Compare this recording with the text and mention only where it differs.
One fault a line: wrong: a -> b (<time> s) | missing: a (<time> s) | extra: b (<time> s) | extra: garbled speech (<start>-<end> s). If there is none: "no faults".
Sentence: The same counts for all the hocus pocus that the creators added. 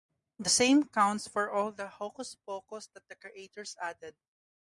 no faults